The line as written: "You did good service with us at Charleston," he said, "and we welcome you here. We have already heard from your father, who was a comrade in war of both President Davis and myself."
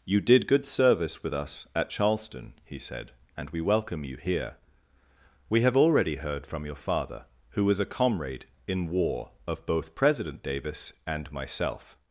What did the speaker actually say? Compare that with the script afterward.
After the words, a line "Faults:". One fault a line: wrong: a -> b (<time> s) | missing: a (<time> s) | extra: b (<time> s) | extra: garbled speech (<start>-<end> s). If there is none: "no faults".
"You did good service with us at Charleston," he said, "and we welcome you here. We have already heard from your father, who was a comrade in war of both President Davis and myself."
Faults:
no faults